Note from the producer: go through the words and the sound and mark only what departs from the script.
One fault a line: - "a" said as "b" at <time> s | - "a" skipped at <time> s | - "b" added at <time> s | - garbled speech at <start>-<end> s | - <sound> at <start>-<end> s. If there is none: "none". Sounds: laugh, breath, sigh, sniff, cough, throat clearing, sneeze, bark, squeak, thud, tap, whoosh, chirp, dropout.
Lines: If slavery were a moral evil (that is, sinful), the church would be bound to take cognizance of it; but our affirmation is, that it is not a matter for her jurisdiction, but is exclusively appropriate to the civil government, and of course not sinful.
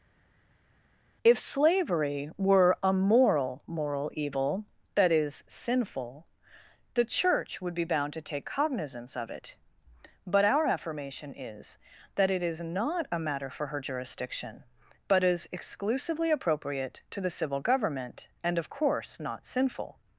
- "moral" added at 3.7 s